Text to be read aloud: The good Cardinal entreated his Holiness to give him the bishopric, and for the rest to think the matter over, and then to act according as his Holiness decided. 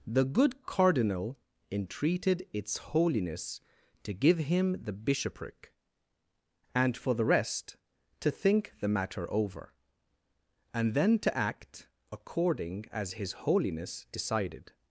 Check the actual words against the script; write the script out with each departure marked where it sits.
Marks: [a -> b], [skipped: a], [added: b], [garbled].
The good Cardinal entreated [his -> its] Holiness to give him the bishopric, and for the rest to think the matter over, and then to act according as his Holiness decided.